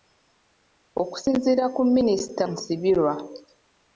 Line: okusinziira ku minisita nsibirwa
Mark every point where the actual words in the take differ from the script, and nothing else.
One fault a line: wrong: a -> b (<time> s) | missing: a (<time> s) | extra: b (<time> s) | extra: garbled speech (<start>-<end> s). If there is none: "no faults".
no faults